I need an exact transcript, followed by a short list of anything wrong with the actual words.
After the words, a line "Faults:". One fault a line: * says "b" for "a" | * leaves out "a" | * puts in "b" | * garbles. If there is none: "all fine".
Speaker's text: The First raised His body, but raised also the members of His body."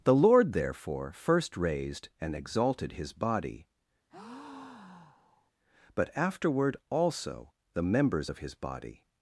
The Lord therefore first raised and exalted His body, but afterward also the members of His body."
Faults:
* puts in "Lord therefore"
* puts in "and exalted"
* says "afterward" for "raised"